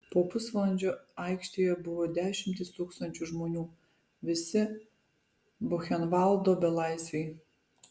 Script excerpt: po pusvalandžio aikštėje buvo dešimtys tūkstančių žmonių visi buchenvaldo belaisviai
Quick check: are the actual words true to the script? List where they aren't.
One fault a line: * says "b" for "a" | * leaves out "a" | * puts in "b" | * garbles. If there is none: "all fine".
all fine